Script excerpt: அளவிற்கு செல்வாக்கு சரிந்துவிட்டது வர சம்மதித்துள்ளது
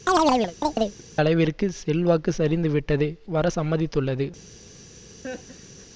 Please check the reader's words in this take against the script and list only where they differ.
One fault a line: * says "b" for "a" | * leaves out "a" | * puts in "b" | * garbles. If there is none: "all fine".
all fine